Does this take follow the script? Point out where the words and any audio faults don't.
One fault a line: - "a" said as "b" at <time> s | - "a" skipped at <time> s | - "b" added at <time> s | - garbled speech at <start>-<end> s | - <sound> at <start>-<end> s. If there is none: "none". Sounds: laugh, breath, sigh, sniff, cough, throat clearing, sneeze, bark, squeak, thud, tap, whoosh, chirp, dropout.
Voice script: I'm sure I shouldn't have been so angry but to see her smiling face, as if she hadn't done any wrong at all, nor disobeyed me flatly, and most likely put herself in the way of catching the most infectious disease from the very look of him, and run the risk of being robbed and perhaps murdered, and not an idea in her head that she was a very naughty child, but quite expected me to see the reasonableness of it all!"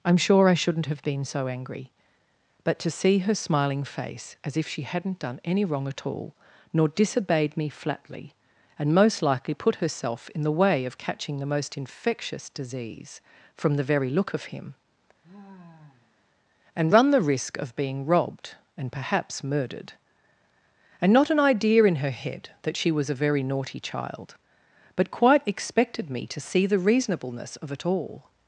- sigh at 15.2-16.3 s